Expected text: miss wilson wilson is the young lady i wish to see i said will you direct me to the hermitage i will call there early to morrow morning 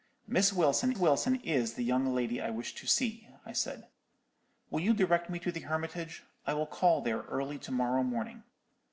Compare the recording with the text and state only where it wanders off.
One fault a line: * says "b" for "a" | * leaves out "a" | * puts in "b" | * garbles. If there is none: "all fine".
all fine